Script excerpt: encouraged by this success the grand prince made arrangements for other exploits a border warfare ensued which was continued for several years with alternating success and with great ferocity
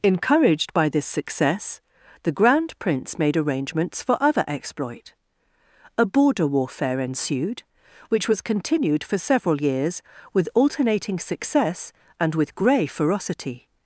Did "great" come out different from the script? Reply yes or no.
yes